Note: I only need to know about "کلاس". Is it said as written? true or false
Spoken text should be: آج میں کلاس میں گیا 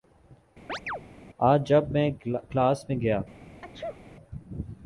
true